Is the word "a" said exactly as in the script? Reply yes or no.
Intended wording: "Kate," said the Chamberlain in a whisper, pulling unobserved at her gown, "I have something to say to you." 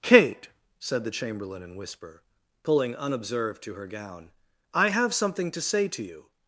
no